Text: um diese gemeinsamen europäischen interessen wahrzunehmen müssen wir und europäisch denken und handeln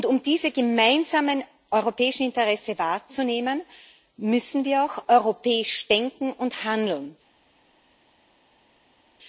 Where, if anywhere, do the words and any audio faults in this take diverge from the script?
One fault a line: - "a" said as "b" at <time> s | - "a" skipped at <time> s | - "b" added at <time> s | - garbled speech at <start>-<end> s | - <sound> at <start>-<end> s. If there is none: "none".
- "und" said as "auch" at 4.8 s